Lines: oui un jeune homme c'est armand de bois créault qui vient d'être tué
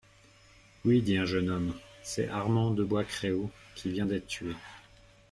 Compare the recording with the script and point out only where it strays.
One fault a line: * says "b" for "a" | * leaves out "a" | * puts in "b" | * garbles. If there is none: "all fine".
* puts in "dit"